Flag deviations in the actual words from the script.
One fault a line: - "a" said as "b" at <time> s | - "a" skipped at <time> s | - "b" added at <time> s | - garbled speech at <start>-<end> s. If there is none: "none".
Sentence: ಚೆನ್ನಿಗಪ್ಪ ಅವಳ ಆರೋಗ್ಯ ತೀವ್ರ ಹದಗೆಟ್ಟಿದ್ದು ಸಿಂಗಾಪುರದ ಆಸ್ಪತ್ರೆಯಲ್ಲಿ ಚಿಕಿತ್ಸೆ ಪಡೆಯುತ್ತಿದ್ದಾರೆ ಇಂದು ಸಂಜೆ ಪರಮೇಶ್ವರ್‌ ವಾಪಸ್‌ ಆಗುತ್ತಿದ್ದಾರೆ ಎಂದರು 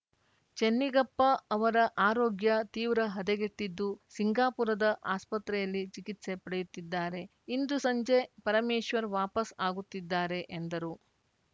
- "ಅವಳ" said as "ಅವರ" at 1.5 s